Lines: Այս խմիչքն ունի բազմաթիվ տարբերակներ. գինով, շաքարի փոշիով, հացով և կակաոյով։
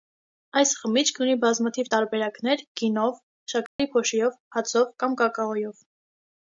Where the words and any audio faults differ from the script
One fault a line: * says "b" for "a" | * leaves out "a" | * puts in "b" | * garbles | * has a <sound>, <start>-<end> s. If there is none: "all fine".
* has a dropout, 3.7-3.8 s
* says "կամ" for "և"